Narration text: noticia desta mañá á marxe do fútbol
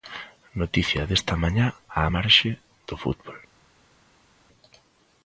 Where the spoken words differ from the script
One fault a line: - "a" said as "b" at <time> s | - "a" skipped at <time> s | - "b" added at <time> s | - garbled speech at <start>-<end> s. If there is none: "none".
none